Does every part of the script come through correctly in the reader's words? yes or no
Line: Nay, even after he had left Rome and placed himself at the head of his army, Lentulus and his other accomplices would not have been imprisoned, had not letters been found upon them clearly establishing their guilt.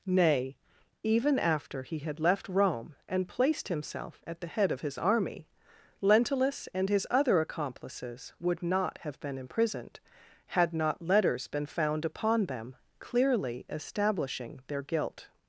yes